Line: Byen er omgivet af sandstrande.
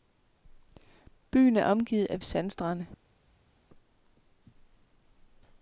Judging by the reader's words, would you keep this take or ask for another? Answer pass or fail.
pass